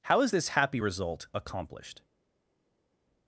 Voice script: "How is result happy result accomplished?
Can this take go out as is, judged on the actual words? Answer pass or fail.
fail